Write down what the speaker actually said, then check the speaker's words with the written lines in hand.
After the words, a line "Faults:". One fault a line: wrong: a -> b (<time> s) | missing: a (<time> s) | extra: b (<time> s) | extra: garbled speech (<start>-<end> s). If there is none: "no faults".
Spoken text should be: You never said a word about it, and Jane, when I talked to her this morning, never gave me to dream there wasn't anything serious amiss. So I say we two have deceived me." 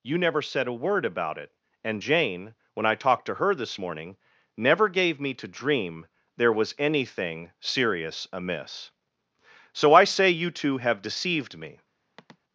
You never said a word about it, and Jane, when I talked to her this morning, never gave me to dream there was anything serious amiss. So I say you two have deceived me."
Faults:
wrong: wasn't -> was (6.5 s)
wrong: we -> you (10.3 s)